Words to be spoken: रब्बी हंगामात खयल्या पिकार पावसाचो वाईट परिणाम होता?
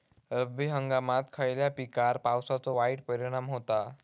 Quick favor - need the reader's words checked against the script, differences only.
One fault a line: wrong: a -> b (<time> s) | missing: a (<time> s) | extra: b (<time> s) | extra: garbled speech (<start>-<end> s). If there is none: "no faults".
no faults